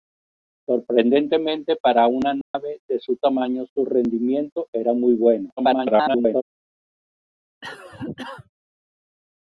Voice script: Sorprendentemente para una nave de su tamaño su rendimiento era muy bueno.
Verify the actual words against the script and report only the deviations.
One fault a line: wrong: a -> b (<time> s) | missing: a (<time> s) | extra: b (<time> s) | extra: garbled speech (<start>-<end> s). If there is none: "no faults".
extra: garbled speech (5.6-6.4 s)